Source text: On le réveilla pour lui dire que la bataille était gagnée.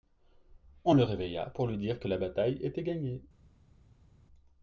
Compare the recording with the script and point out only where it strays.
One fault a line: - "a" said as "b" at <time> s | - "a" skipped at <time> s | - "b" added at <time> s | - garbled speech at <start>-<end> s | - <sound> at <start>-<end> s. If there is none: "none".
none